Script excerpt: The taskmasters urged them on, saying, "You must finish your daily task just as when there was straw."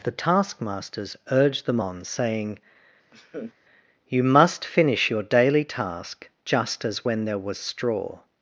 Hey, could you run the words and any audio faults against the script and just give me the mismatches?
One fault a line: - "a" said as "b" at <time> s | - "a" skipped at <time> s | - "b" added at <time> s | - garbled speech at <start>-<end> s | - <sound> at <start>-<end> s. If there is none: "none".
- laugh at 3.1-3.5 s